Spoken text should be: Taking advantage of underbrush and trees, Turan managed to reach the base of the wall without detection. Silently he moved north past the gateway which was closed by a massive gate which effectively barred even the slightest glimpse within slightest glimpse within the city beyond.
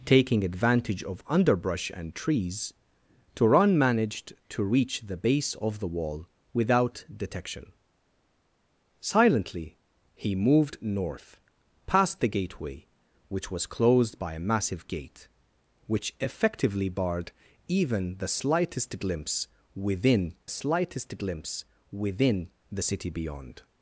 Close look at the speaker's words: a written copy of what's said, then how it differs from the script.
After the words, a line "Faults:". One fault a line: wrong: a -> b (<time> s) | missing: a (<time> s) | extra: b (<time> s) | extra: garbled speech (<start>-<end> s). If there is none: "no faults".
Taking advantage of underbrush and trees, Turan managed to reach the base of the wall without detection. Silently he moved north past the gateway which was closed by a massive gate which effectively barred even the slightest glimpse within slightest glimpse within the city beyond.
Faults:
no faults